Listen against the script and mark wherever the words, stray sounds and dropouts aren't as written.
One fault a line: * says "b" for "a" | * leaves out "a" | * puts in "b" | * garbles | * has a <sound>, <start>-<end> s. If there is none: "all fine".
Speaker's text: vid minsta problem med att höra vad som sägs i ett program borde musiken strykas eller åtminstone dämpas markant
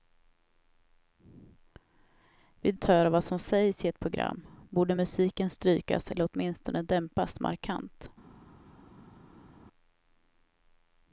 * leaves out "minsta problem med"